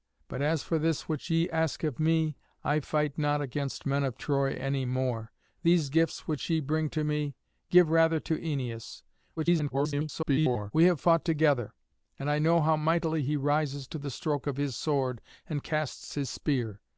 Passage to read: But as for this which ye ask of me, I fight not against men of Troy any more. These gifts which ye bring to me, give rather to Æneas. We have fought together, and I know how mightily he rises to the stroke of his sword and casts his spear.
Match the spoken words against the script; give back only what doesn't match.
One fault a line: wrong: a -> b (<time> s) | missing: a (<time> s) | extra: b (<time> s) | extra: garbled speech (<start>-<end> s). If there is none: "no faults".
extra: garbled speech (9.4-10.7 s)